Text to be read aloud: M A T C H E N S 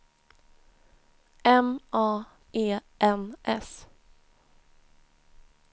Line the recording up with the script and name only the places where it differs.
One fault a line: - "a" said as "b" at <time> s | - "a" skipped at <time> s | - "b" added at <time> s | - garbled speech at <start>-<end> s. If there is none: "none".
- "T C H" skipped at 2.2 s